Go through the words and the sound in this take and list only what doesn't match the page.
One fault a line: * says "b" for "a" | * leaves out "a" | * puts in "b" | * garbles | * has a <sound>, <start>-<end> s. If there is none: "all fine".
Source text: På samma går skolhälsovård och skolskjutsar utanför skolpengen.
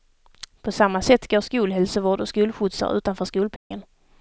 * puts in "sätt"
* has a dropout, 3.6-3.7 s